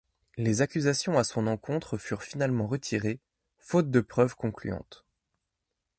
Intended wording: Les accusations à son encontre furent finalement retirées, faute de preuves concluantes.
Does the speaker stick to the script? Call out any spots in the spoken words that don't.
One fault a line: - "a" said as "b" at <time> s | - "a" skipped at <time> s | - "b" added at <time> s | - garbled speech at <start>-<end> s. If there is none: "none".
none